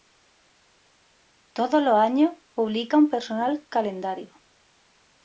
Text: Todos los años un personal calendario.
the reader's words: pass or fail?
fail